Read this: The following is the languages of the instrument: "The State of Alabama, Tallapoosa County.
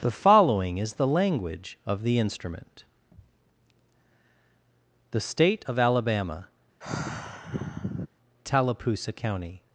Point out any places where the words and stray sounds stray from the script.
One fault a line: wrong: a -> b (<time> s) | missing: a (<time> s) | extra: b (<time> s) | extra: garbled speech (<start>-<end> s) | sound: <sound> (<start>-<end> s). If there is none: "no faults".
wrong: languages -> language (1.1 s)
sound: sigh (6.8-8.1 s)